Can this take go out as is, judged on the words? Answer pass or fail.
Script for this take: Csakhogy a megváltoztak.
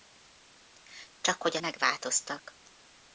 pass